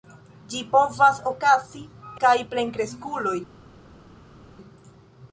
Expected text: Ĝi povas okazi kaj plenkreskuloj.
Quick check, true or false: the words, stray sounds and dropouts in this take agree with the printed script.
true